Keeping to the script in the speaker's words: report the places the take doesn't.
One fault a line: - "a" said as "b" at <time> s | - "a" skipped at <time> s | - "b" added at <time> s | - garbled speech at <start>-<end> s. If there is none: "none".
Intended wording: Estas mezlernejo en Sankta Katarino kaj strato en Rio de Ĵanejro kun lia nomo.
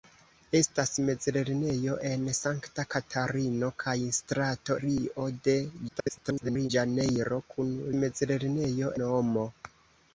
- "en" skipped at 4.8 s
- garbled speech at 5.9-6.7 s
- "lia" said as "mezlernejo" at 8.0 s